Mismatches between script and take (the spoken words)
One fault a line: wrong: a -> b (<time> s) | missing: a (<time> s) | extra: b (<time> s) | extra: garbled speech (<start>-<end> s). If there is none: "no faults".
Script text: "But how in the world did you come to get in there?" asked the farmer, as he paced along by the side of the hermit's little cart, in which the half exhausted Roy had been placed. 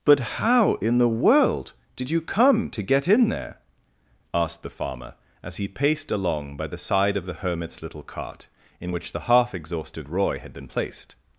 no faults